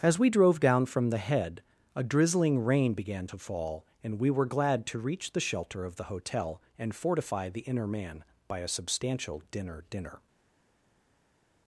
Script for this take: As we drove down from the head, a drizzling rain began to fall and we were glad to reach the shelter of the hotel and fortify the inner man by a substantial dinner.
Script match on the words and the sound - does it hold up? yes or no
no